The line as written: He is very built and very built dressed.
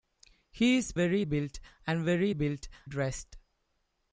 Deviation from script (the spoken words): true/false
false